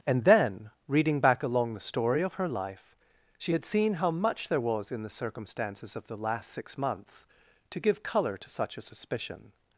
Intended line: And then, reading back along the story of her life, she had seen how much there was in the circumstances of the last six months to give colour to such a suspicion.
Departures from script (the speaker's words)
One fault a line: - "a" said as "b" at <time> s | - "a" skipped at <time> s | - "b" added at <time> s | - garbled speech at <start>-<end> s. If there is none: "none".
none